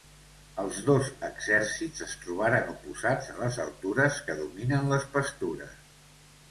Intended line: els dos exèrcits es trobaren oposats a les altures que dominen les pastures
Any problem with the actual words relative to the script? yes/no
no